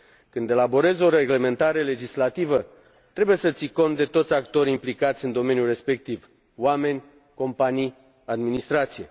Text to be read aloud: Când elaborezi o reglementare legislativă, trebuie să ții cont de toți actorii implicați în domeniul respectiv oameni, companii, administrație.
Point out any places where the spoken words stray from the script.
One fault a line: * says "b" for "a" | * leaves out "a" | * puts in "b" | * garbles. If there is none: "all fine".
all fine